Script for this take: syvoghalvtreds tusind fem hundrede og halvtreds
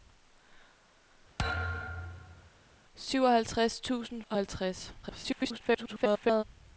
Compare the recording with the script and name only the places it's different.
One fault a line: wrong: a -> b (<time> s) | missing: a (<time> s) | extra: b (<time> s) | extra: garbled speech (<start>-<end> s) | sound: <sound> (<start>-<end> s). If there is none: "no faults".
sound: thud (1.4-2.5 s)
missing: fem hundrede (4.2 s)
extra: garbled speech (5.0-6.4 s)